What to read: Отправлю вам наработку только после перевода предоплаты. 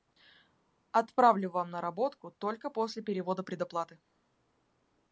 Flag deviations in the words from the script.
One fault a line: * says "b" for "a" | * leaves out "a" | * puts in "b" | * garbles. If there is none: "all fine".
all fine